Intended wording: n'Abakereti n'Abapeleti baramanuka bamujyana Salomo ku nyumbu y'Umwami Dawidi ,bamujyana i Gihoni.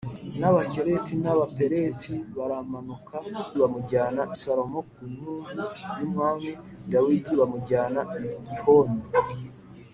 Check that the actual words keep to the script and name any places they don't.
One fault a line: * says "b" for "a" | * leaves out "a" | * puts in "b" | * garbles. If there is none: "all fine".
all fine